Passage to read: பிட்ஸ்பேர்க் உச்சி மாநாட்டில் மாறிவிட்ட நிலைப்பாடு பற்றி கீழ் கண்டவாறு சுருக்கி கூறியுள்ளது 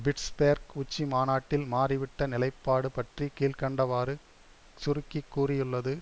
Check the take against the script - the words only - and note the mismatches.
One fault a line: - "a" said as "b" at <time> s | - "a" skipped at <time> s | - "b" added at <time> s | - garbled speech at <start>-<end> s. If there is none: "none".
none